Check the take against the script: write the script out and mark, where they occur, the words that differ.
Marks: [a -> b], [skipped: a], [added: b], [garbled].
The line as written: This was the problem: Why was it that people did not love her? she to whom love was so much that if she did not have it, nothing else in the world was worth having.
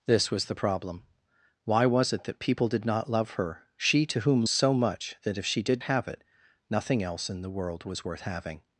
This was the problem: Why was it that people did not love her? she to whom [skipped: love was] so much that if she did [skipped: not] have it, nothing else in the world was worth having.